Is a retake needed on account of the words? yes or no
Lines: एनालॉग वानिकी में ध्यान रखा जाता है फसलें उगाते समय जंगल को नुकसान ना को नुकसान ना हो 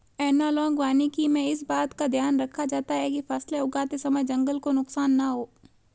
yes